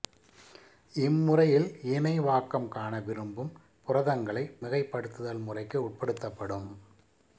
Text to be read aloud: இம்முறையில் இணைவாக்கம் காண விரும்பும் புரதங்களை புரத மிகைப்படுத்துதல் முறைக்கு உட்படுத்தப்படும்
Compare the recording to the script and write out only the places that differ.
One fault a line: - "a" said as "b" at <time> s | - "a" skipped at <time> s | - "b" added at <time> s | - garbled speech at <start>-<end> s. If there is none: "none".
- "புரத" skipped at 4.4 s